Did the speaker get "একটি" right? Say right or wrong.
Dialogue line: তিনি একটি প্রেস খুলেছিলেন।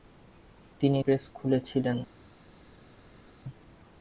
wrong